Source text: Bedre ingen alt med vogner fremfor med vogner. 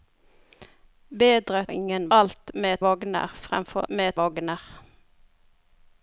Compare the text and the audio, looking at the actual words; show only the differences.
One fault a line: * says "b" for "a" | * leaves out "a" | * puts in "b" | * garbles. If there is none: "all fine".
all fine